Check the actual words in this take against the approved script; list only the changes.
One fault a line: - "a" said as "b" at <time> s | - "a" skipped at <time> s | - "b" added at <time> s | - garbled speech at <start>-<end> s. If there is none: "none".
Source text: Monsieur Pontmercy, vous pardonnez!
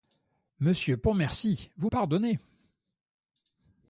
none